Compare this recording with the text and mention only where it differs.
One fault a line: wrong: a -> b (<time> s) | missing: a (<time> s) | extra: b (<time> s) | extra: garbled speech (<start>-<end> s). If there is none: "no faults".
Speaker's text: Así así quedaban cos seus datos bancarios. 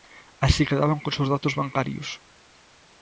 missing: así (0.6 s)